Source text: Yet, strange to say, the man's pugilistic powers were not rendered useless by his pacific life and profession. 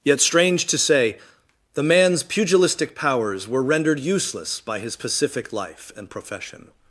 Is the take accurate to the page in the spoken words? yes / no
no